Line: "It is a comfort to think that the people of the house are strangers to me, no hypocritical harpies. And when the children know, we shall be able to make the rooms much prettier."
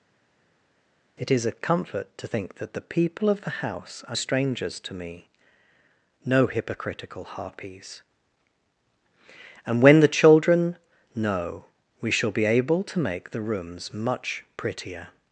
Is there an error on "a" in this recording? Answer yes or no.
no